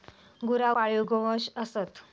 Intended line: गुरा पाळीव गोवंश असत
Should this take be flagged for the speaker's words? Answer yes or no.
no